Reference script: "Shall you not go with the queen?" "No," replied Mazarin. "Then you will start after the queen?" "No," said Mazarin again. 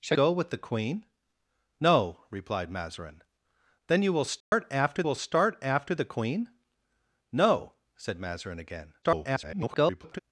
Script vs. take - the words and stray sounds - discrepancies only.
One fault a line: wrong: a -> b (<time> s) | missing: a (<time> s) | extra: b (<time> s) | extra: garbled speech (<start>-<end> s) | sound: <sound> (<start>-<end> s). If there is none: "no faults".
missing: you not (0.2 s)
sound: dropout (4.4-4.5 s)
extra: will start after (5.0 s)
extra: garbled speech (9.0-10.2 s)